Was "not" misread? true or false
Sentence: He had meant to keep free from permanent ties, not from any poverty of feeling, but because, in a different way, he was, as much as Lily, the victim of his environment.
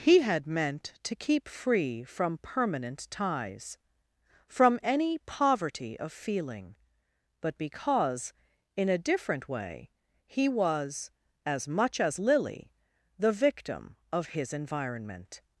true